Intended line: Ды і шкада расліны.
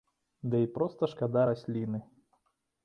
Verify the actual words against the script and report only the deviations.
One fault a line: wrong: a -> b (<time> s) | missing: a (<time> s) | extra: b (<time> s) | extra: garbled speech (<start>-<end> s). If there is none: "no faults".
extra: проста (0.8 s)